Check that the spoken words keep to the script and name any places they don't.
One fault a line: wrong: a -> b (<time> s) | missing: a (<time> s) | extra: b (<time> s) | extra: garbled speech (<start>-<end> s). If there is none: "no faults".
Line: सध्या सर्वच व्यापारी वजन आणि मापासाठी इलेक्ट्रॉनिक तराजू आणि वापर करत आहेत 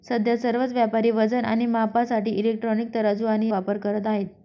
no faults